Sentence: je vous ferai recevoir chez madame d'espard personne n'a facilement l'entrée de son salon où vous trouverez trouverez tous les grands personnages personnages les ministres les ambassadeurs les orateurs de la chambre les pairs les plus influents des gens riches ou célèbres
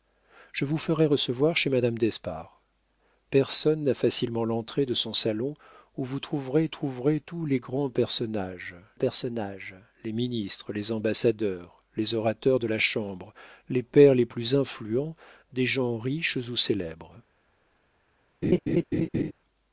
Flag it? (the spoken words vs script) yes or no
no